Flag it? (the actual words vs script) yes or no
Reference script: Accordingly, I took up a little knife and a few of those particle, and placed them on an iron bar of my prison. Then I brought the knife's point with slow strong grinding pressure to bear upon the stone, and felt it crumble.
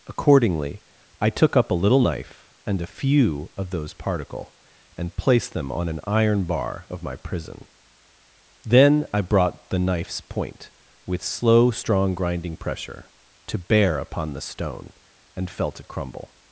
no